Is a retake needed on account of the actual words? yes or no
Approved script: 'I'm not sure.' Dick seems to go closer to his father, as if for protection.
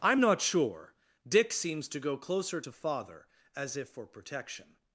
yes